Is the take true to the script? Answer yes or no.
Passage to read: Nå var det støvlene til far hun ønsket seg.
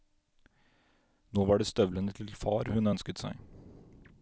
yes